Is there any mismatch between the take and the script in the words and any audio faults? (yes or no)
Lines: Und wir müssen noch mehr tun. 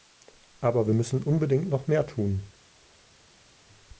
yes